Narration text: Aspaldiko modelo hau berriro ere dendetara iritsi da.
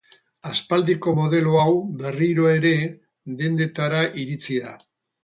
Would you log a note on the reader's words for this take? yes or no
no